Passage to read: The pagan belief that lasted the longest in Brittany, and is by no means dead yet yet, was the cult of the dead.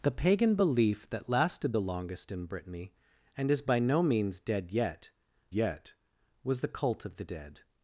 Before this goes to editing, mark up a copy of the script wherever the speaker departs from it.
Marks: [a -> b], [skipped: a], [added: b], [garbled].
The pagan belief that lasted the longest in Brittany, and is by no means dead yet yet, was the cult of the dead.